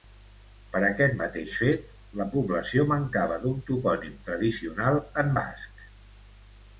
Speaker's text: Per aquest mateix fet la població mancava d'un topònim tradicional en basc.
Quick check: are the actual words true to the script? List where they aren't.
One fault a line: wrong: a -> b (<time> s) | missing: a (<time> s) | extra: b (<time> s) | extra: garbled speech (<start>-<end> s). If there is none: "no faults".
no faults